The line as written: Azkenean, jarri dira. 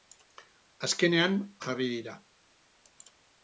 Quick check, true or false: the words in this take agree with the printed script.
true